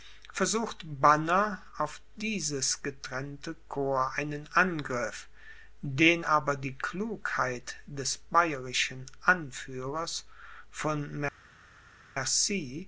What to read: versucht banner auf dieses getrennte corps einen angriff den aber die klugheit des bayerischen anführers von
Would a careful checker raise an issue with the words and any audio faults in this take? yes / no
no